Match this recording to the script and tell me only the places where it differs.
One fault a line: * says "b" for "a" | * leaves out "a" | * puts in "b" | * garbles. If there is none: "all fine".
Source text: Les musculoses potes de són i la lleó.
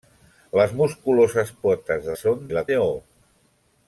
all fine